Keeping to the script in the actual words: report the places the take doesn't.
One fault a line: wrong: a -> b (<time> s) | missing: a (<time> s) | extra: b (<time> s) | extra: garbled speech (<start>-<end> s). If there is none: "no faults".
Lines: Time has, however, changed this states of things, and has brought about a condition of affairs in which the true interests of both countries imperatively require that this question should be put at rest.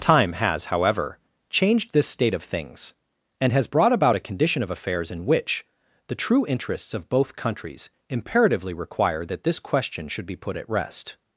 wrong: states -> state (2.1 s)